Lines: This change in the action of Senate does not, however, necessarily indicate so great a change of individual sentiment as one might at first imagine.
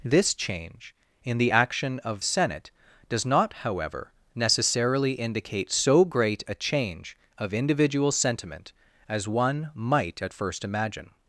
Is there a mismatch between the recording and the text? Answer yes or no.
no